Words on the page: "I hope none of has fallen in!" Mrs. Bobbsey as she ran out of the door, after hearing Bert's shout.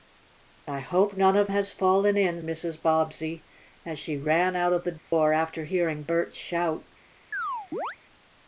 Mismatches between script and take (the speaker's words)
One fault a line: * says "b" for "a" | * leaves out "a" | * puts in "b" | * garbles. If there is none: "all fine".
all fine